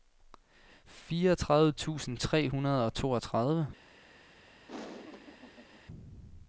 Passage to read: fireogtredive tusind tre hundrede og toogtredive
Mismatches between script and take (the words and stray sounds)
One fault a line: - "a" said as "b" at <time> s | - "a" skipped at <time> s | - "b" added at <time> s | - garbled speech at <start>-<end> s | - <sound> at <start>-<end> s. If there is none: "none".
- laugh at 4.7-5.8 s